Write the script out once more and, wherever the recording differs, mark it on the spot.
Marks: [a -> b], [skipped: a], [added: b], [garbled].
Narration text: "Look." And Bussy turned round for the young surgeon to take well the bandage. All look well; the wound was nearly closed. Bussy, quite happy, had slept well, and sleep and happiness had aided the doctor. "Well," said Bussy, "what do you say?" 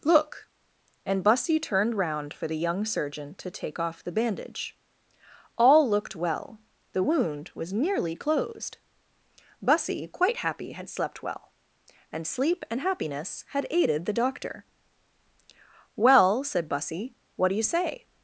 "Look." And Bussy turned round for the young surgeon to take [well -> off] the bandage. All [look -> looked] well; the wound was nearly closed. Bussy, quite happy, had slept well, and sleep and happiness had aided the doctor. "Well," said Bussy, "what do you say?"